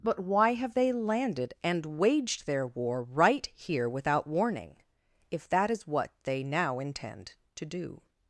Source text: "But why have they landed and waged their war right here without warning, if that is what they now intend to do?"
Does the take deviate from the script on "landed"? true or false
false